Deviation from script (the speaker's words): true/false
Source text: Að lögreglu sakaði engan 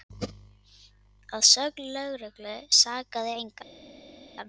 true